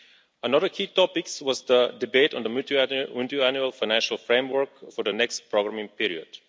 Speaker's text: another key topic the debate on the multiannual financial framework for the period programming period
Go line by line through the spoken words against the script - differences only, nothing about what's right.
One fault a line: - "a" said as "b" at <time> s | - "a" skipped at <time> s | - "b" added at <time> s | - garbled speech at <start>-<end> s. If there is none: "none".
- "was" added at 1.4 s
- "period" said as "next" at 5.1 s